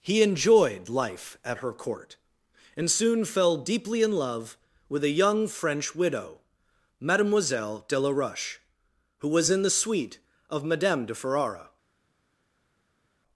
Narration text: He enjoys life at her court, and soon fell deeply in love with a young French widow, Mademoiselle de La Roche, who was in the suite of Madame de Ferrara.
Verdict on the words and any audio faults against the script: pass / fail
fail